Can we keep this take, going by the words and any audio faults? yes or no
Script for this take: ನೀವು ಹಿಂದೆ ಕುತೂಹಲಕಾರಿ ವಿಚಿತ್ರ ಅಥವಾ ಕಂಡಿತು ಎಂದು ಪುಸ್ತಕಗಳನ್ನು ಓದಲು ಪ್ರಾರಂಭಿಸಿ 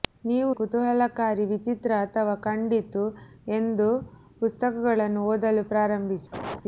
no